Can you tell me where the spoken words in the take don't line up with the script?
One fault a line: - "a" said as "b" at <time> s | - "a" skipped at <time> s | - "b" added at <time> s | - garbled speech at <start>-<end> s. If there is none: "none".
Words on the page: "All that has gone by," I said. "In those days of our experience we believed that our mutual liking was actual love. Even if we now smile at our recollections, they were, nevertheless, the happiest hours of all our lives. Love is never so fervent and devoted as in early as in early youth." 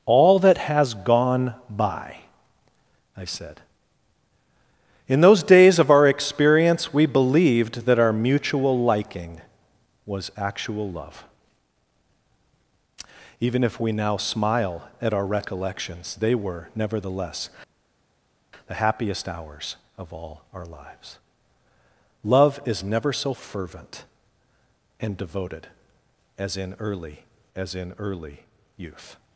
none